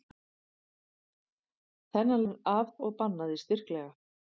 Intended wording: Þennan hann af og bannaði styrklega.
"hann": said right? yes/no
yes